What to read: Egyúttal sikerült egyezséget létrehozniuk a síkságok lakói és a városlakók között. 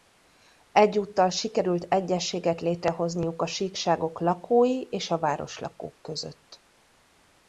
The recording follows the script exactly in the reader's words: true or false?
true